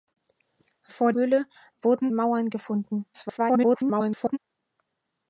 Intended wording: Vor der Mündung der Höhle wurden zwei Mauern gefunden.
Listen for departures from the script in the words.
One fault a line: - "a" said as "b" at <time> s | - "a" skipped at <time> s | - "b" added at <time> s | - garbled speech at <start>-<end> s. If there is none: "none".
- "der Mündung der" skipped at 1.1 s
- "zwei" skipped at 2.1 s
- garbled speech at 3.1-4.4 s